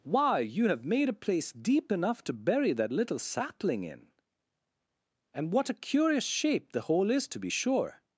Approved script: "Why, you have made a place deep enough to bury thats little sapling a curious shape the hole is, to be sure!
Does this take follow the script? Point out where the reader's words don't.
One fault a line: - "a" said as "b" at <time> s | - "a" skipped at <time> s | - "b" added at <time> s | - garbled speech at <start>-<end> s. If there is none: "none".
- "thats" said as "that" at 2.7 s
- "in And what" added at 3.8 s